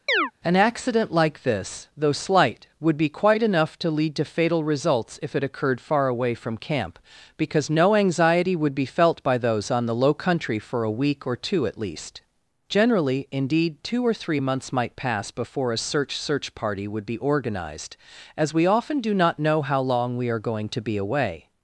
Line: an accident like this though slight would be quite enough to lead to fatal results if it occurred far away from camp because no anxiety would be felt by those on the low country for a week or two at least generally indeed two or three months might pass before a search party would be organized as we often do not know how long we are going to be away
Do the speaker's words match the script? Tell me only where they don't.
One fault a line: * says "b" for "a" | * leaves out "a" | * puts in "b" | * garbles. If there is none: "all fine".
* puts in "search"